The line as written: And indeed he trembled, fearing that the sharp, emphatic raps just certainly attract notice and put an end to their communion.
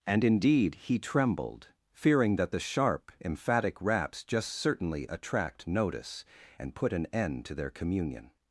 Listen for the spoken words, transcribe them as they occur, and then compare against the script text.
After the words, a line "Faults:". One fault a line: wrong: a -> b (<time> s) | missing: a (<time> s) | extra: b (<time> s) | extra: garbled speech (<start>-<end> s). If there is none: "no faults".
And indeed he trembled, fearing that the sharp, emphatic raps just certainly attract notice and put an end to their communion.
Faults:
no faults